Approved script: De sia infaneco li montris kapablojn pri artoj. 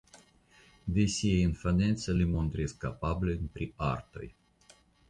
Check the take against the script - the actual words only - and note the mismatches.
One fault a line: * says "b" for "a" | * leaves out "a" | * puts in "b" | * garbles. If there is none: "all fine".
all fine